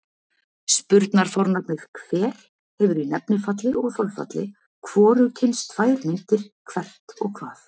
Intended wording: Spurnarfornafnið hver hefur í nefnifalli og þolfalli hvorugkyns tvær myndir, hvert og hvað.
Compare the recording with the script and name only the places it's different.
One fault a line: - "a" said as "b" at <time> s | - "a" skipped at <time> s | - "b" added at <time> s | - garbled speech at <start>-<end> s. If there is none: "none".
none